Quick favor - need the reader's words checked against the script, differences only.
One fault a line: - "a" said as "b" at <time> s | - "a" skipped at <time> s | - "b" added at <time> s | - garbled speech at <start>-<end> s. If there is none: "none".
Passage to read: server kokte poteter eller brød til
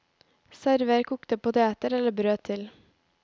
none